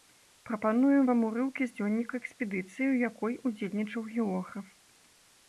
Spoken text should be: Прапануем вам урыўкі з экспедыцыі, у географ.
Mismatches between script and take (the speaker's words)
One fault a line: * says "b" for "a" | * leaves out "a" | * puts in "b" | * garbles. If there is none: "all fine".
* puts in "дзённіка"
* puts in "якой удзельнічаў"